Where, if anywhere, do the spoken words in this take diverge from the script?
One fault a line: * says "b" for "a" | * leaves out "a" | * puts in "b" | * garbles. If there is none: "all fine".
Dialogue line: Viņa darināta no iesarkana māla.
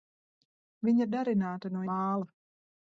* leaves out "iesarkana"